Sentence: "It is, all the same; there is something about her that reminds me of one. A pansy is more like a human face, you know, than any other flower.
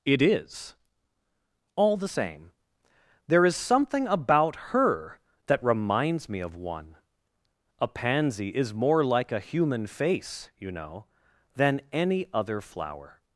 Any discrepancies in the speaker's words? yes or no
no